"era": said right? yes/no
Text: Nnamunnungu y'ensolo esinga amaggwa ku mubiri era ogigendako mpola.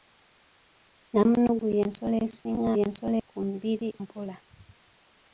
no